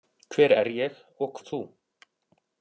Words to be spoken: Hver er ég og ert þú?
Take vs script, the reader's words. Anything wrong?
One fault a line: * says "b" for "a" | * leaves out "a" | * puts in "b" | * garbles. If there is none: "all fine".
all fine